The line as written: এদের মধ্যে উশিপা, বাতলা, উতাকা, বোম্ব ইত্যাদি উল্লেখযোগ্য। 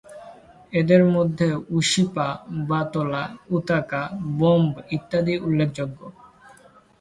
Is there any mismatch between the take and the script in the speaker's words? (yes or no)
no